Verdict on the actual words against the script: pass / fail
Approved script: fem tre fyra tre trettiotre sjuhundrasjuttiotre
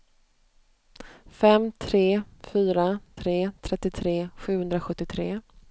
pass